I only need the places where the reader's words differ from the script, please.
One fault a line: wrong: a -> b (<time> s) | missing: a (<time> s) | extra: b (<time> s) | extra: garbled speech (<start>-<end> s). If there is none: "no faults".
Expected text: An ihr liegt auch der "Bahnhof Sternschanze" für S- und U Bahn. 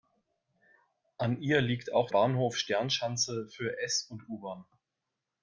missing: der (2.1 s)